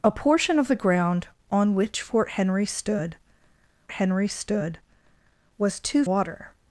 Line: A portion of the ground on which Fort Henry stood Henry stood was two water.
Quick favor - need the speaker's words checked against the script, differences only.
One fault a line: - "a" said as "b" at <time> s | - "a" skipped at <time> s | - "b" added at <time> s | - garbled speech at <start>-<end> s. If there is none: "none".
none